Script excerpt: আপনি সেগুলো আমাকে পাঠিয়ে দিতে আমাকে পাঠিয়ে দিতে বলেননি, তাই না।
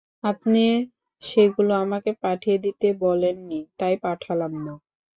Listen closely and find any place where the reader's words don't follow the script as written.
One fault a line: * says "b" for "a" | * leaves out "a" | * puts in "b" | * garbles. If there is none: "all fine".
* leaves out "আমাকে পাঠিয়ে দিতে"
* puts in "পাঠালাম"